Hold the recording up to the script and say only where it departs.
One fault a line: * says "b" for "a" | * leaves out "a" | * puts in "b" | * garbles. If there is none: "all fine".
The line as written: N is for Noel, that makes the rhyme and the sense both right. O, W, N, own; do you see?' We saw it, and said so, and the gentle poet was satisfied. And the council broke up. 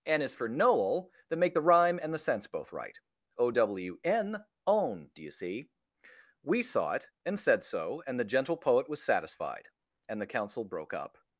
* says "make" for "makes"